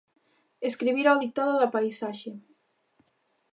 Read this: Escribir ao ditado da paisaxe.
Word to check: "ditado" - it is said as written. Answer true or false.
true